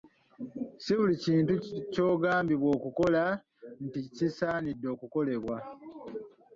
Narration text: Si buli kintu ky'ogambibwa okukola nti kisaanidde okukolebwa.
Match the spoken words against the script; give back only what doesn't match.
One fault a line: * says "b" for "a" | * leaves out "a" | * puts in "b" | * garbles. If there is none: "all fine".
all fine